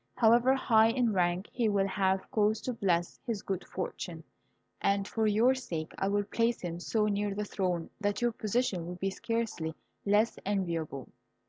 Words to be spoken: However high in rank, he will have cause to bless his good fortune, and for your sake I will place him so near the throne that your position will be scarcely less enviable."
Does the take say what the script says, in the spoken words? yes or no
yes